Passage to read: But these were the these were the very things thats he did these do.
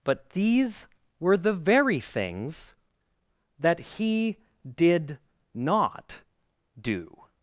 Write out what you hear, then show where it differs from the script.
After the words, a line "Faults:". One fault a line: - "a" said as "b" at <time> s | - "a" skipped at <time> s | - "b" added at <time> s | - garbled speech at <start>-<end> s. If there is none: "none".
But these were the very things that he did not do.
Faults:
- "these were the" skipped at 1.5 s
- "thats" said as "that" at 3.6 s
- "these" said as "not" at 5.5 s